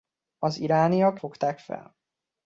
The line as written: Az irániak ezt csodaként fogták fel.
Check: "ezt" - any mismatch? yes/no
yes